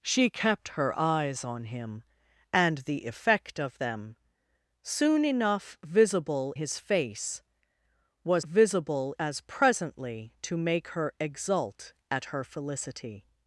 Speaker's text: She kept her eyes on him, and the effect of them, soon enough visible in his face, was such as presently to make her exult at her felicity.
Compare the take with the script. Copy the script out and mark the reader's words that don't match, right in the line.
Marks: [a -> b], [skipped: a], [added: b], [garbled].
She kept her eyes on him, and the effect of them, soon enough visible [skipped: in] his face, was [such -> visible] as presently to make her exult at her felicity.